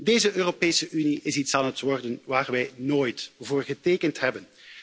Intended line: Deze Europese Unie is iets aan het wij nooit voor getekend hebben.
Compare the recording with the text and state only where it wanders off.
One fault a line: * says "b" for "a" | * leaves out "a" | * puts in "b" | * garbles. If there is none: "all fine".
* puts in "worden waar"